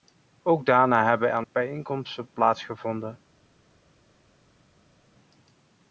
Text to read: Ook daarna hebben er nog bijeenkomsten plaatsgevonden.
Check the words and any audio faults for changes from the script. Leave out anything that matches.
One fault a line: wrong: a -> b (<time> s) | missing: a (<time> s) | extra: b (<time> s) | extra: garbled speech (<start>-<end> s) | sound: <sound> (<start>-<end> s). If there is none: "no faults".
missing: nog (1.4 s)